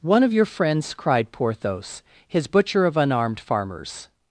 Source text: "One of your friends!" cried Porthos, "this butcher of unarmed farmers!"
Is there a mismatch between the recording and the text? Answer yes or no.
yes